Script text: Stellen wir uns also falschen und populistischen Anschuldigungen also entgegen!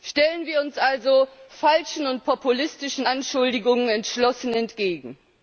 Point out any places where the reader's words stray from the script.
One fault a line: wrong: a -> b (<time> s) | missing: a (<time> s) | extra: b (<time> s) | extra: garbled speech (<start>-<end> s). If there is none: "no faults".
wrong: also -> entschlossen (3.9 s)